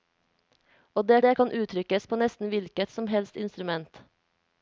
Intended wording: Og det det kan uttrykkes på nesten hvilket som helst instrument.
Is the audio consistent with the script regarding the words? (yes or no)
yes